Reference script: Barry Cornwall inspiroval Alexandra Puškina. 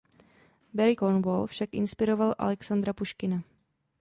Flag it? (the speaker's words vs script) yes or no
yes